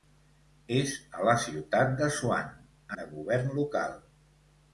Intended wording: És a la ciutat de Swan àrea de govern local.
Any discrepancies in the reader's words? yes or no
yes